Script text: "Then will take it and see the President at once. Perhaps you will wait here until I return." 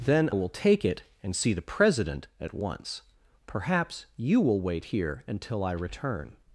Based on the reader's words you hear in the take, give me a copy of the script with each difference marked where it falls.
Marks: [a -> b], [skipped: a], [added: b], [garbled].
"Then will take it and see the President at once. Perhaps you will wait here until I return."